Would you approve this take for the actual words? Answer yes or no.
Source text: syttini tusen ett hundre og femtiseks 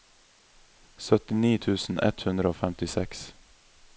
yes